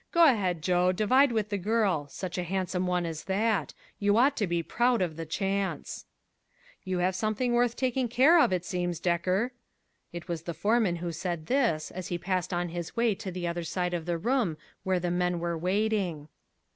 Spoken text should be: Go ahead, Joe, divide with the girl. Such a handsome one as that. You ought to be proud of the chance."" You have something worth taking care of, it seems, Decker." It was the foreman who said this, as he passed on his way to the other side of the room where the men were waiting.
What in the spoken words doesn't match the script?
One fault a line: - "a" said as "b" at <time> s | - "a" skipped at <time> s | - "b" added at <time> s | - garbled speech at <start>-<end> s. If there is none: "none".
none